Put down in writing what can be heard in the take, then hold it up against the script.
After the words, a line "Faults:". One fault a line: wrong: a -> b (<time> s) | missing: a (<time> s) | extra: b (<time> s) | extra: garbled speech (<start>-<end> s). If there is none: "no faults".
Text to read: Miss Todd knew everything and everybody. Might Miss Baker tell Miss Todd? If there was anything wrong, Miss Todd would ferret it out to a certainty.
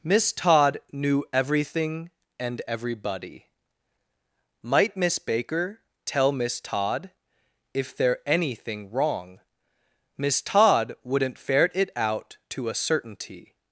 Miss Todd knew everything and everybody. Might Miss Baker tell Miss Todd? If there anything wrong, Miss Todd wouldn't ferret it out to a certainty.
Faults:
missing: was (8.2 s)
wrong: would -> wouldn't (11.0 s)